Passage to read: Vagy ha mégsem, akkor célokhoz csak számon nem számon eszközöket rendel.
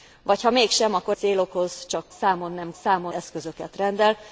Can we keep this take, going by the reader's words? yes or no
yes